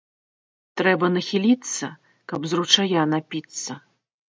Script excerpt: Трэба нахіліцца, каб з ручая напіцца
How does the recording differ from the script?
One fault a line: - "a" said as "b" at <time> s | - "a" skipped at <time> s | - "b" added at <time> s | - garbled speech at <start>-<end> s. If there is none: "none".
none